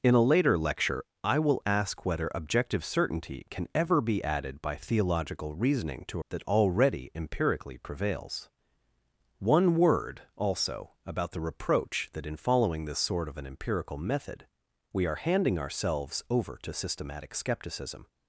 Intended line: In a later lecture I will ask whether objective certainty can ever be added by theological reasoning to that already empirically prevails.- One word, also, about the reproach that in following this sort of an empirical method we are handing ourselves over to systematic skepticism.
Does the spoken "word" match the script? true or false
true